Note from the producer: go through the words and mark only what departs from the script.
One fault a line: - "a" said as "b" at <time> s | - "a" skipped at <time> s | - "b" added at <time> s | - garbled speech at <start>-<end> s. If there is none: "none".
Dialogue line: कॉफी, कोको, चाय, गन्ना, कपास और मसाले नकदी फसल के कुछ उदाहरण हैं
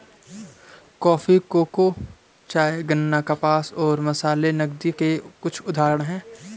- "फसल" skipped at 4.9 s